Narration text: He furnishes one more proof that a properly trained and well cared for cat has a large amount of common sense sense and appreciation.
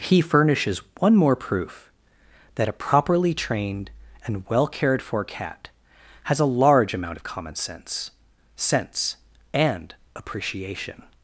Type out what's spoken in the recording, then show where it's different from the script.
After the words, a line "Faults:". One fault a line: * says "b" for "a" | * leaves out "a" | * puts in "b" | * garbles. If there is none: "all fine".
He furnishes one more proof that a properly trained and well cared for cat has a large amount of common sense sense and appreciation.
Faults:
all fine